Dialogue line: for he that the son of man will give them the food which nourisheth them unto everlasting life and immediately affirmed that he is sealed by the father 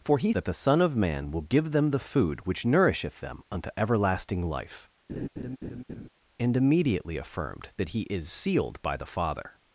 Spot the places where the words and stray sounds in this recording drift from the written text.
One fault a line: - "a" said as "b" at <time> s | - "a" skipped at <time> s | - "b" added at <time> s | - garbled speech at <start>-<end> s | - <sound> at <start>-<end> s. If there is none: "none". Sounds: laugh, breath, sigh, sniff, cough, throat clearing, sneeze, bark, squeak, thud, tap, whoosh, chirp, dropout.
- laugh at 5.1-6.1 s